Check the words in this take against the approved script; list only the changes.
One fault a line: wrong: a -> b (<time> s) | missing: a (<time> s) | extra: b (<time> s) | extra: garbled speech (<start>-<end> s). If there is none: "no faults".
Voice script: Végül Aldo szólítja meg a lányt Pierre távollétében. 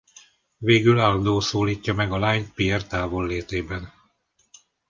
no faults